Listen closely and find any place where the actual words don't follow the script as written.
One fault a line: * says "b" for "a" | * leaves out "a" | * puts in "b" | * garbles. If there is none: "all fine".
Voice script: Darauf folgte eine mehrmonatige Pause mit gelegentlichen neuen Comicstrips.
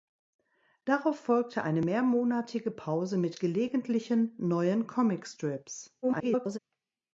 * garbles